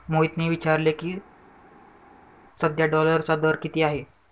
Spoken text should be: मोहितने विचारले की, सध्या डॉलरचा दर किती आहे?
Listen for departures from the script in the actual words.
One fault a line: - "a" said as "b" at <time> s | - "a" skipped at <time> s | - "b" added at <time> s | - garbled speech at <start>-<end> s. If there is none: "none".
none